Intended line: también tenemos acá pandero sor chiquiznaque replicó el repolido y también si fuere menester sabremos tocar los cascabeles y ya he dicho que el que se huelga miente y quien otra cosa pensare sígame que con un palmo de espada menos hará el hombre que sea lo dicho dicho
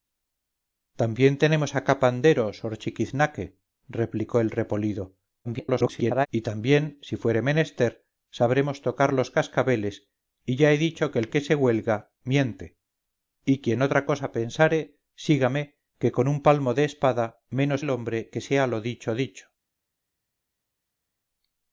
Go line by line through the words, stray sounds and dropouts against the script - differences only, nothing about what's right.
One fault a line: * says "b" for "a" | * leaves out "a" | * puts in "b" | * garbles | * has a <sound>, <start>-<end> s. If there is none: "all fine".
* garbles
* leaves out "hará"